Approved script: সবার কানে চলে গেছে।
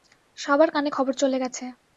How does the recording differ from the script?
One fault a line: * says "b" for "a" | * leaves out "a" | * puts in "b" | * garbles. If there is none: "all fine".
* puts in "খবর"